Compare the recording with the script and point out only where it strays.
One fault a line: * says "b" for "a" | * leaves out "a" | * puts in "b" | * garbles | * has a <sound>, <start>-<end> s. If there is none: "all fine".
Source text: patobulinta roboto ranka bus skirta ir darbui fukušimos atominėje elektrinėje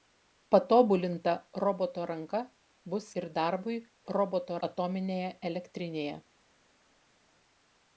* leaves out "skirta"
* says "roboto" for "fukušimos"